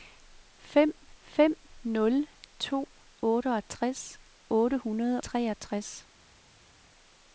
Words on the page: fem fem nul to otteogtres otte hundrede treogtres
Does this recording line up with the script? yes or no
yes